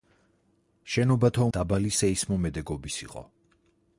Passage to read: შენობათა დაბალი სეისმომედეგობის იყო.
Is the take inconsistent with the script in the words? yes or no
no